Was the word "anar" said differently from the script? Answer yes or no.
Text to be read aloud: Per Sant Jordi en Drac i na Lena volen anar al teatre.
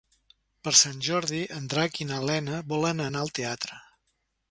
no